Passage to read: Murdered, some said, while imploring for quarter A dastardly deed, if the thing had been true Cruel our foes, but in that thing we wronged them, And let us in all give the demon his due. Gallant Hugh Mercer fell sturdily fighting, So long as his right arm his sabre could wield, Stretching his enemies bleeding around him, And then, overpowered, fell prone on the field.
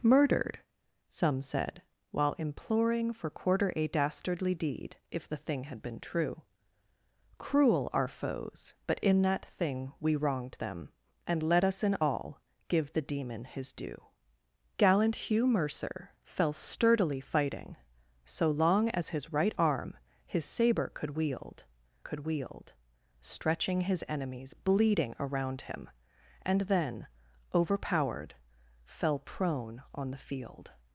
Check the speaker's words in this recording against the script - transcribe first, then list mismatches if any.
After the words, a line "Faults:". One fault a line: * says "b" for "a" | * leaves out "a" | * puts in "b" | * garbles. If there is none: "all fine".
Murdered, some said, while imploring for quarter A dastardly deed, if the thing had been true Cruel our foes, but in that thing we wronged them, And let us in all give the demon his due. Gallant Hugh Mercer fell sturdily fighting, So long as his right arm his sabre could wield could wield, Stretching his enemies bleeding around him, And then, overpowered, fell prone on the field.
Faults:
* puts in "could wield"